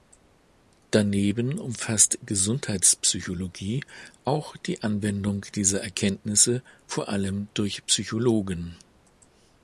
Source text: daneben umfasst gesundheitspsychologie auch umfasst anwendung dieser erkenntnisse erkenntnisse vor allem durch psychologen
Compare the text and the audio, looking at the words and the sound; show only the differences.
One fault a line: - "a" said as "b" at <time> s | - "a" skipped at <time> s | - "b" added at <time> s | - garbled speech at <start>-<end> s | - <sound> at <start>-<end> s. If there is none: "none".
- "umfasst" said as "die" at 4.6 s
- "erkenntnisse" skipped at 6.6 s